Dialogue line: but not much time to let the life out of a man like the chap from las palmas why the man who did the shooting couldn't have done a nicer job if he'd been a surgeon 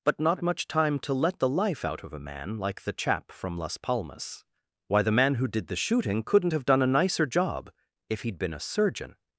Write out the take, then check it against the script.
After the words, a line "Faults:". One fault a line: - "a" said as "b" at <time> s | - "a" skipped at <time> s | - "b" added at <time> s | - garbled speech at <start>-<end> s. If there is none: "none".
but not much time to let the life out of a man like the chap from las palmas why the man who did the shooting couldn't have done a nicer job if he'd been a surgeon
Faults:
none